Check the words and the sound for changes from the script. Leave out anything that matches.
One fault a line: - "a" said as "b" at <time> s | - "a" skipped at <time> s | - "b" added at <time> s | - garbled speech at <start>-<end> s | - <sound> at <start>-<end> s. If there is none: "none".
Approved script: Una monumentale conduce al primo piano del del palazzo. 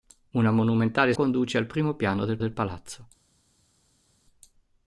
none